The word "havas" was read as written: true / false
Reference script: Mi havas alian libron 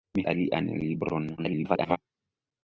false